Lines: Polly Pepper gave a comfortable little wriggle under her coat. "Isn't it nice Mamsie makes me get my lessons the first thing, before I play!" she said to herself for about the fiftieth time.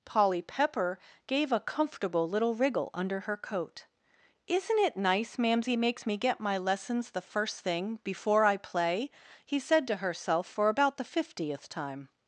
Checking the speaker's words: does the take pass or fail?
fail